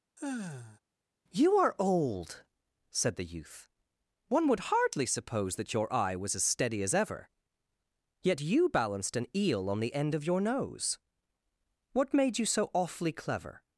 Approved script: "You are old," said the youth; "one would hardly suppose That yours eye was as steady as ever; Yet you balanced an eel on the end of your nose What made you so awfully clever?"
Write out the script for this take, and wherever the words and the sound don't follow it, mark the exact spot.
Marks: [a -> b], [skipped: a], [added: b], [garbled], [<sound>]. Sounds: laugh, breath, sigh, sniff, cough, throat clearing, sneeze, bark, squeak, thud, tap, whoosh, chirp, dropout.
[sigh] "You are old," said the youth; "one would hardly suppose That [yours -> your] eye was as steady as ever; Yet you balanced an eel on the end of your nose What made you so awfully clever?"